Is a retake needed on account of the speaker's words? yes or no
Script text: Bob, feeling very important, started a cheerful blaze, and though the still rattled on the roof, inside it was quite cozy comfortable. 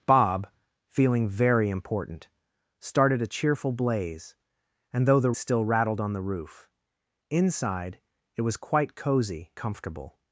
no